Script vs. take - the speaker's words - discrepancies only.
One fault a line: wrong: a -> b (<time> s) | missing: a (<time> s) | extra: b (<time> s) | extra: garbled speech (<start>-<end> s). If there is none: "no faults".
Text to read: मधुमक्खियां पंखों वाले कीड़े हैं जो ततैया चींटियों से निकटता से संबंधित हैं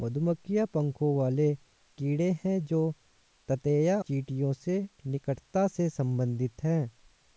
no faults